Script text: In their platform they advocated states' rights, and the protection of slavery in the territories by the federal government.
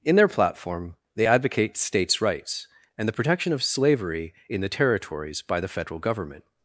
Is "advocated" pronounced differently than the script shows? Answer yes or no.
yes